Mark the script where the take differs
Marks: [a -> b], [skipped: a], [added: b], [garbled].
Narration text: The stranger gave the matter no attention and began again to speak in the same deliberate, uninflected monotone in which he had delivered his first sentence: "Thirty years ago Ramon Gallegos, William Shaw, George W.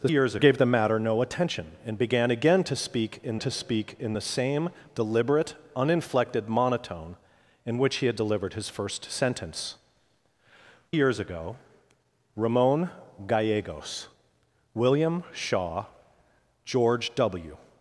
The [stranger -> years] gave the matter no attention and began again to speak in [added: to speak in] the same deliberate, uninflected monotone in which he had delivered his first sentence: [skipped: "Thirty] years ago Ramon Gallegos, William Shaw, George W.